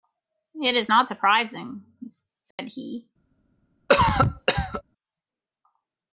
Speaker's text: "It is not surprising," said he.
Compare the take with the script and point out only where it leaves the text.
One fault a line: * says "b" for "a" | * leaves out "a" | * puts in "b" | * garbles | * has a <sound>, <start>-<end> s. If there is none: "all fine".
* has a dropout, 2.5-2.6 s
* has a cough, 3.9-4.8 s